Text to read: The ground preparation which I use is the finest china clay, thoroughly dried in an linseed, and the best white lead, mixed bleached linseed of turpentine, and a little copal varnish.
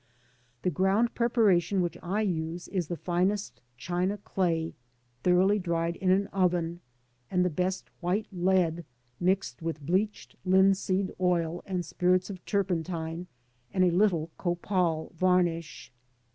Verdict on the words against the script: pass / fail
fail